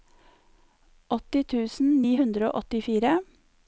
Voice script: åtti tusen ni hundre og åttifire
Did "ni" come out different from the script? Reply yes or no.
no